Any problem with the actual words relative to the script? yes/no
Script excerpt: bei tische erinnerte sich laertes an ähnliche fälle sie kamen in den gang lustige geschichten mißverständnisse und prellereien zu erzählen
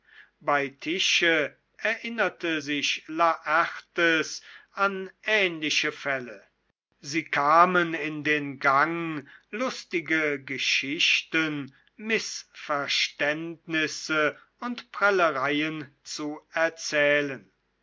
no